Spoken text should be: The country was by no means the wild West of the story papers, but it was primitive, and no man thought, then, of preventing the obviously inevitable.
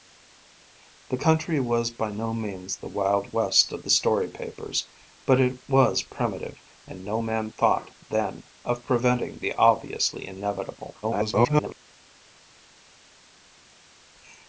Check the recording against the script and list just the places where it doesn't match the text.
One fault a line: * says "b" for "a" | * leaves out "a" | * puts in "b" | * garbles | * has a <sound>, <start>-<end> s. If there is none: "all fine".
* garbles